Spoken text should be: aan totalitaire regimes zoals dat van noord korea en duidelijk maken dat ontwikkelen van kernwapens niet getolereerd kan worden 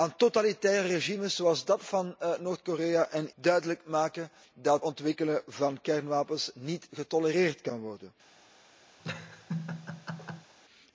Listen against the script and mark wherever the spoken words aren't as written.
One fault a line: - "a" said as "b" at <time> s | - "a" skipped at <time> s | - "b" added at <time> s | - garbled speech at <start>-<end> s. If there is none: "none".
none